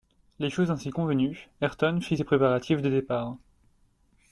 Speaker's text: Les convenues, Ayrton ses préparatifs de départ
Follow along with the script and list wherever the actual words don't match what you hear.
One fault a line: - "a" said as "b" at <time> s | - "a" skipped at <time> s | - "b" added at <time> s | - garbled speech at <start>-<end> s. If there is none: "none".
- "choses ainsi" added at 0.5 s
- "fit" added at 2.0 s